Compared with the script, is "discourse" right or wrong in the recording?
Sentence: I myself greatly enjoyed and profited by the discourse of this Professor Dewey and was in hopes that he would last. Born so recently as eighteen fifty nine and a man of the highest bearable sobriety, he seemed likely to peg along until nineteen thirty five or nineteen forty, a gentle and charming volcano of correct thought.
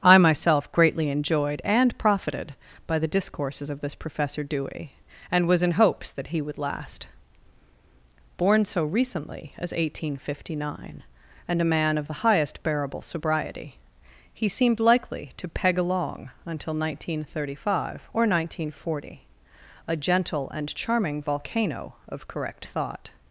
wrong